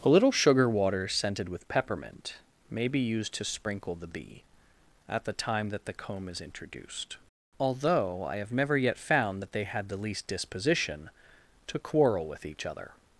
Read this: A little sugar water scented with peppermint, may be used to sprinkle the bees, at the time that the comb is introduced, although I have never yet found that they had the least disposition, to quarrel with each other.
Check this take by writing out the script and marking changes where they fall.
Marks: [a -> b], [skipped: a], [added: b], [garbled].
A little sugar water scented with peppermint, may be used to sprinkle the [bees, -> bee] at the time that the comb is introduced, although I have never yet found that they had the least disposition, to quarrel with each other.